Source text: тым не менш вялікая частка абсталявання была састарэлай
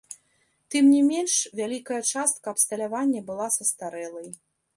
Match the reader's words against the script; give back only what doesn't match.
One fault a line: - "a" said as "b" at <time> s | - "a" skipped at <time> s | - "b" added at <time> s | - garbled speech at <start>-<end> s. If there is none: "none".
none